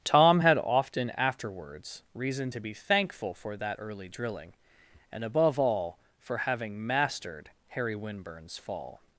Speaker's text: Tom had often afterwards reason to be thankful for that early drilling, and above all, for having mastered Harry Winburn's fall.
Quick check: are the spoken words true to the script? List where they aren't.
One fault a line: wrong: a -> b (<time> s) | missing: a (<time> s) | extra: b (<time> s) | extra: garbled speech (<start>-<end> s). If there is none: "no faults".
no faults